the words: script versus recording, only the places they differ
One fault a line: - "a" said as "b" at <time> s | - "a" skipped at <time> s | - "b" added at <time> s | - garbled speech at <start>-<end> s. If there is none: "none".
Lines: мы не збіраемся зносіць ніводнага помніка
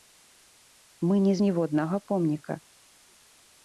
- "збіраемся зносіць" skipped at 1.3 s